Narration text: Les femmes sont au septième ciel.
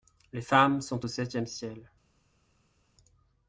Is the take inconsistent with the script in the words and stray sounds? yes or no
no